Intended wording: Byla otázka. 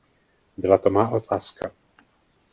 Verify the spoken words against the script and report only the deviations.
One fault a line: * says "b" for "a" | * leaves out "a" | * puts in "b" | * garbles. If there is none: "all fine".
* puts in "to má"